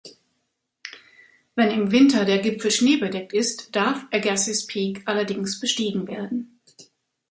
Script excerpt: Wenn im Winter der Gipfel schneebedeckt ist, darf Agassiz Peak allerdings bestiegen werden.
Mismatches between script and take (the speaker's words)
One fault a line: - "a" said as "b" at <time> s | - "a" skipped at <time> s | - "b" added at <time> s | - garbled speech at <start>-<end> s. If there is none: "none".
none